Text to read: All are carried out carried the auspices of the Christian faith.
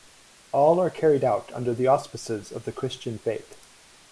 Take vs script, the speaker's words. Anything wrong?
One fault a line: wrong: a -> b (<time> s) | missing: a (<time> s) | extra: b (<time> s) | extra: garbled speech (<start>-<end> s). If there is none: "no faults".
wrong: carried -> under (1.5 s)